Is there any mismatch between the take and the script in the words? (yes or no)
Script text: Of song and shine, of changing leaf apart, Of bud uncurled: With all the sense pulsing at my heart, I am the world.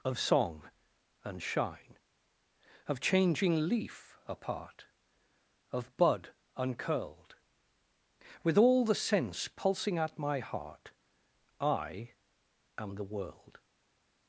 no